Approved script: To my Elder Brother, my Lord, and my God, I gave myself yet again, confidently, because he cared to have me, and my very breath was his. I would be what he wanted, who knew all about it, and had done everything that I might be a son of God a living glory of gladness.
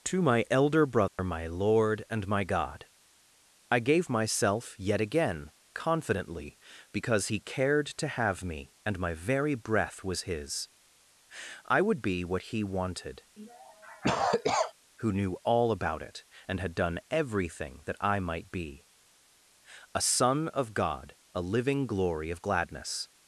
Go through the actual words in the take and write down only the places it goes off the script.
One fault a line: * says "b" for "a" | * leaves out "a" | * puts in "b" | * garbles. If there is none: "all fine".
all fine